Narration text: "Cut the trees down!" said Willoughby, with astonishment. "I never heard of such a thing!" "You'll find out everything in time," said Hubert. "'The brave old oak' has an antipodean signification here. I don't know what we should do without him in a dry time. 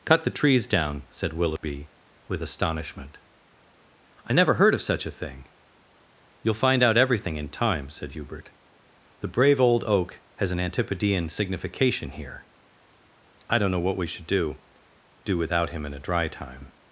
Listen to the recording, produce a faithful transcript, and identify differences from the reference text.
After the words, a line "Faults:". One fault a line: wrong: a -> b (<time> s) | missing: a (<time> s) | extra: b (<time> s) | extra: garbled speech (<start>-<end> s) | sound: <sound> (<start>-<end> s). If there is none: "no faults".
"Cut the trees down!" said Willoughby, with astonishment. "I never heard of such a thing!" "You'll find out everything in time," said Hubert. "'The brave old oak' has an antipodean signification here. I don't know what we should do do without him in a dry time.
Faults:
sound: dropout (1.6-1.6 s)
extra: do (15.2 s)